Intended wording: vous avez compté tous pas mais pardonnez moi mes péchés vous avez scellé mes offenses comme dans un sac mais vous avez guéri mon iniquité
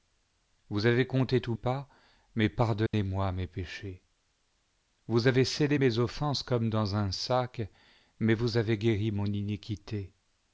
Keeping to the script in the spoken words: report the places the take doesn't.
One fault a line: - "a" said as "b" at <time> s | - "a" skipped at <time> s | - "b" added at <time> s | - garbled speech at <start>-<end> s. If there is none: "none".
none